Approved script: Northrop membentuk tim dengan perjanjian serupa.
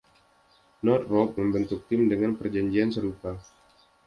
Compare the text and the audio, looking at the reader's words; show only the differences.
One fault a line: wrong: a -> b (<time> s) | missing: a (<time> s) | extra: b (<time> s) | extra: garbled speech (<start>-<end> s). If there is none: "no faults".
no faults